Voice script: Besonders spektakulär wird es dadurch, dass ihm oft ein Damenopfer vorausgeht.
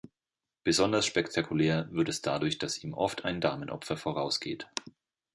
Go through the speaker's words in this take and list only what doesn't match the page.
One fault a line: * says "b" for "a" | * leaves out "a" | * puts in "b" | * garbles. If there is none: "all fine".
all fine